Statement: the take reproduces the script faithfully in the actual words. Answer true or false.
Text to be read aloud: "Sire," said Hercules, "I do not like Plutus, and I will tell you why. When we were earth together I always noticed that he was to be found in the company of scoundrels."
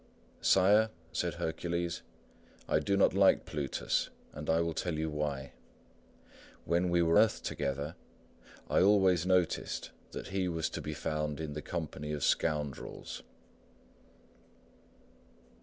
true